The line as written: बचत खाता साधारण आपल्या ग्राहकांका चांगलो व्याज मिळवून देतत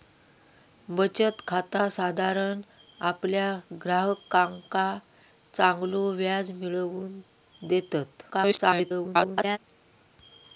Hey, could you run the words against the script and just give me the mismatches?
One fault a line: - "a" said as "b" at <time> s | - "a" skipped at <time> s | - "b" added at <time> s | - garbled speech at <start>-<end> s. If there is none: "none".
- garbled speech at 8.3-9.6 s